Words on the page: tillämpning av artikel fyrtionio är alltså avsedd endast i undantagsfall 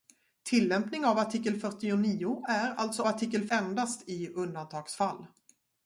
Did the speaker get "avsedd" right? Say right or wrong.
wrong